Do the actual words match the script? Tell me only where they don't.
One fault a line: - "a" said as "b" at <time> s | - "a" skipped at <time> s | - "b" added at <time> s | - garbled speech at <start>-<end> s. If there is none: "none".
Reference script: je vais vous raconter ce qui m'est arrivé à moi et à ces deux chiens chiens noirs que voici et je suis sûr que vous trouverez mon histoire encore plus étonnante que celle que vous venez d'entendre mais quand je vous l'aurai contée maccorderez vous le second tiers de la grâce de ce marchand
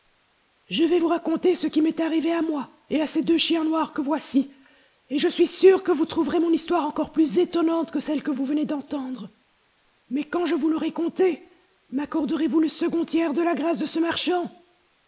- "chiens" skipped at 3.6 s